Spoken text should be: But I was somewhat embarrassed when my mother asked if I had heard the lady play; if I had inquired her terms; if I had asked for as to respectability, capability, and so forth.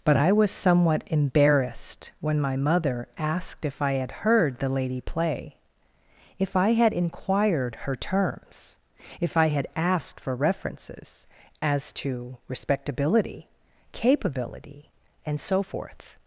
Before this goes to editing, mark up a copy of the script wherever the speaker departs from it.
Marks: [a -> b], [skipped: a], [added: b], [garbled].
But I was somewhat embarrassed when my mother asked if I had heard the lady play; if I had inquired her terms; if I had asked for [added: references] as to respectability, capability, and so forth.